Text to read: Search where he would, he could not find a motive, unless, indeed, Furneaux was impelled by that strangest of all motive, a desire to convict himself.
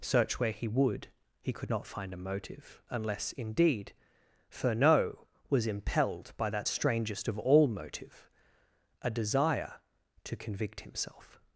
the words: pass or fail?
pass